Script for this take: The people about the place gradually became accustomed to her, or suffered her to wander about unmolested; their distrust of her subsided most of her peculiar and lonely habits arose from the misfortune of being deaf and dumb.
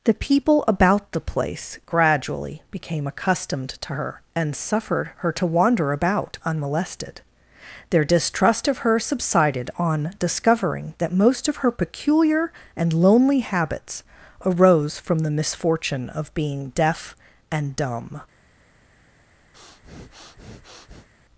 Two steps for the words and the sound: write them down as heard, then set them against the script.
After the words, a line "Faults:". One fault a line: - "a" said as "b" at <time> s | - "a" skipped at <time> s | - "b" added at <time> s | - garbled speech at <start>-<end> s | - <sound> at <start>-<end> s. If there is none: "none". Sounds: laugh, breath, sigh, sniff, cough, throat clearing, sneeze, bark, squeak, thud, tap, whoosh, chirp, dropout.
The people about the place gradually became accustomed to her, and suffered her to wander about unmolested; their distrust of her subsided on discovering that most of her peculiar and lonely habits arose from the misfortune of being deaf and dumb.
Faults:
- "or" said as "and" at 4.3 s
- "on discovering that" added at 9.8 s
- breath at 19.5-21.1 s